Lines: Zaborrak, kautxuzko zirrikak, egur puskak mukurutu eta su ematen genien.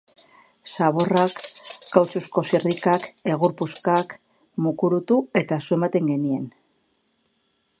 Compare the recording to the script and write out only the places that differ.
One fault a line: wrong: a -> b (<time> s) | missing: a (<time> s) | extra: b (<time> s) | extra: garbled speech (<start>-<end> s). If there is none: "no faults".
no faults